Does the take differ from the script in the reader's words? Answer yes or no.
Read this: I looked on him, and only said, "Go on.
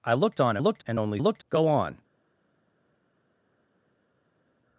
yes